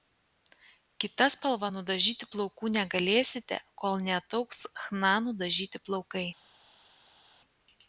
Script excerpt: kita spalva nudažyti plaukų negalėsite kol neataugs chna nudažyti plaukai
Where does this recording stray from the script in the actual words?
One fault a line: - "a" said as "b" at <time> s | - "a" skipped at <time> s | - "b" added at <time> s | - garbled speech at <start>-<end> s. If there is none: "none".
none